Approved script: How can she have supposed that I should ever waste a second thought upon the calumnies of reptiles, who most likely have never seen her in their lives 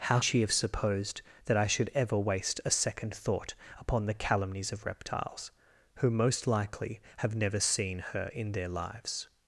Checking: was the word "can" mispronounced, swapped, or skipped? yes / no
yes